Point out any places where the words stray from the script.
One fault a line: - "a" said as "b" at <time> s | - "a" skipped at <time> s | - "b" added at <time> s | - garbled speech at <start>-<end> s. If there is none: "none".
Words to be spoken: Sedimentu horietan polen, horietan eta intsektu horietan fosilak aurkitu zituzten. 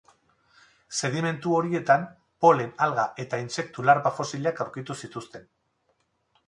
- "horietan" said as "alga" at 2.9 s
- "horietan" said as "larba" at 3.9 s